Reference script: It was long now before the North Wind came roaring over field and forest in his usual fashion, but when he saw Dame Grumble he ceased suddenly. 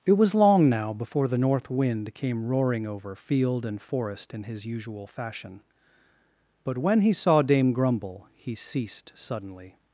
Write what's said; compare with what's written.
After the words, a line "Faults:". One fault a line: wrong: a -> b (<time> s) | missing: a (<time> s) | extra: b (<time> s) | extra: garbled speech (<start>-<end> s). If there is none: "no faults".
It was long now before the North Wind came roaring over field and forest in his usual fashion, but when he saw Dame Grumble he ceased suddenly.
Faults:
no faults